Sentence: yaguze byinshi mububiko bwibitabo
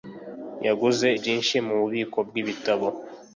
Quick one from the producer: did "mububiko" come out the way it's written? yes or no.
yes